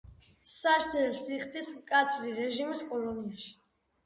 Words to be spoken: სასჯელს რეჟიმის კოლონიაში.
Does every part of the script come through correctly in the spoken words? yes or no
no